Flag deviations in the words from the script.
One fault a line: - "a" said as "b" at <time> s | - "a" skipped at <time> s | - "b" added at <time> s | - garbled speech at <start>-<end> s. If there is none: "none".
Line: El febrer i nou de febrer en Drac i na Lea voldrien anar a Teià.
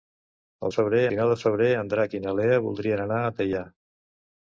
none